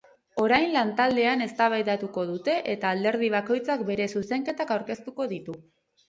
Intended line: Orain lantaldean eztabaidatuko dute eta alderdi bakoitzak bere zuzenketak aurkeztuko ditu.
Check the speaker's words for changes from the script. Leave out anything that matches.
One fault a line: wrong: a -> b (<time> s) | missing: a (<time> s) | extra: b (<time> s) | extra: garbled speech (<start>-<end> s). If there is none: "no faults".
no faults